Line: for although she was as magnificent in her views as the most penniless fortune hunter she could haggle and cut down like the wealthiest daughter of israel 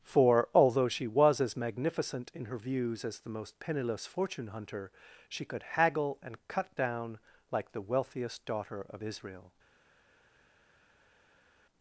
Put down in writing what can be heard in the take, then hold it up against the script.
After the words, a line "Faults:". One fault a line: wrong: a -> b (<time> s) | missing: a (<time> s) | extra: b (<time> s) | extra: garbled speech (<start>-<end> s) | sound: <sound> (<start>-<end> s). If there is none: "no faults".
for although she was as magnificent in her views as the most penniless fortune hunter she could haggle and cut down like the wealthiest daughter of israel
Faults:
no faults